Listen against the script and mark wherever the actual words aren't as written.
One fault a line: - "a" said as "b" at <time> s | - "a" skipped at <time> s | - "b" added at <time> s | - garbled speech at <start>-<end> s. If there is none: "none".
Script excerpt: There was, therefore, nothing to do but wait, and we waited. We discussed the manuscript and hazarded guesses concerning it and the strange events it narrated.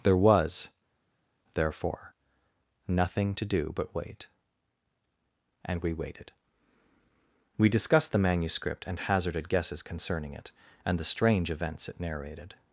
none